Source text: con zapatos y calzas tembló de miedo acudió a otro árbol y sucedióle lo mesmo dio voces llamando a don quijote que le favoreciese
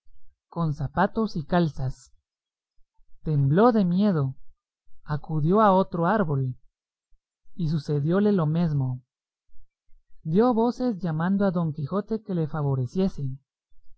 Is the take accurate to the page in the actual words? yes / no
yes